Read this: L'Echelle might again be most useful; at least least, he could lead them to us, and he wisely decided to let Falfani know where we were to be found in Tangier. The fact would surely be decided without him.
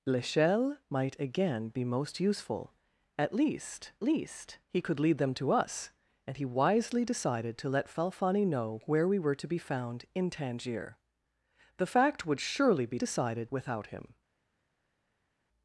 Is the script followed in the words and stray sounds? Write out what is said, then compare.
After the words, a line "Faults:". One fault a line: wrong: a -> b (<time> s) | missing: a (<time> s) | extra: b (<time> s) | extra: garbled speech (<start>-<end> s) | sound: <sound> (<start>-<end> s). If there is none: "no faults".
L'Echelle might again be most useful; at least least, he could lead them to us, and he wisely decided to let Falfani know where we were to be found in Tangier. The fact would surely be decided without him.
Faults:
no faults